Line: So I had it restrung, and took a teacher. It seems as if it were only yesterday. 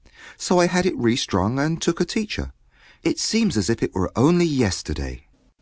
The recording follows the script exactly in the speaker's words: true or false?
true